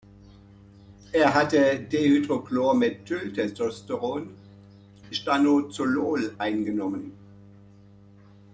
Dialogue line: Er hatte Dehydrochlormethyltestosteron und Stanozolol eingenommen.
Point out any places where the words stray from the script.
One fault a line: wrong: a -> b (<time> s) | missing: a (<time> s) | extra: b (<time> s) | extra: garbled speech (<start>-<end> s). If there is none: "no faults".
missing: und (4.3 s)